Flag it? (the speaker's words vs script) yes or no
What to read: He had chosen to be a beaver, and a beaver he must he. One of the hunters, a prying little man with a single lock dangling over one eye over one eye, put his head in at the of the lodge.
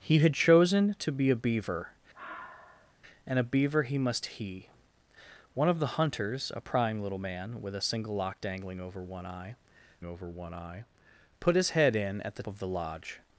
no